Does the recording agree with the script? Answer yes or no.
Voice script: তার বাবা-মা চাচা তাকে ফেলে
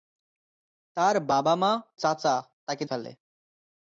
yes